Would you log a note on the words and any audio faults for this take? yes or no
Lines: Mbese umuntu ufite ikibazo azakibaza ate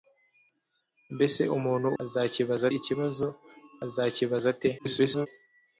yes